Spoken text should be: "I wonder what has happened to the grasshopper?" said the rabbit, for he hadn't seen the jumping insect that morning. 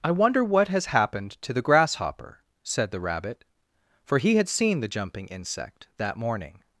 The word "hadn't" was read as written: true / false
false